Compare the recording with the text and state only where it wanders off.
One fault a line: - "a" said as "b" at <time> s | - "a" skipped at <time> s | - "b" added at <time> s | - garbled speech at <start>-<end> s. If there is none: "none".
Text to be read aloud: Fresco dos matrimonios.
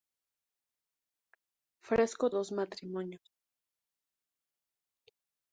none